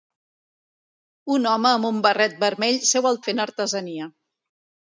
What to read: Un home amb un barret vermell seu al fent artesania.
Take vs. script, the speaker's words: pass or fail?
pass